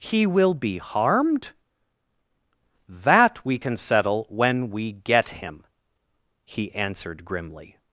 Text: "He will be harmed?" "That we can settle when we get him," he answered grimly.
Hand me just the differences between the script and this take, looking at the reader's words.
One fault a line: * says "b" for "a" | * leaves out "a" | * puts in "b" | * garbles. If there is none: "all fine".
all fine